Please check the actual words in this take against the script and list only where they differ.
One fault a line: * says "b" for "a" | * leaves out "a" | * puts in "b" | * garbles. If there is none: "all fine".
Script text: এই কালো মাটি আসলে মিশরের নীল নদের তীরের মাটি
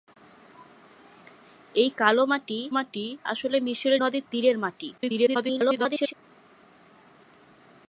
* puts in "মাটি"
* leaves out "নীল"
* garbles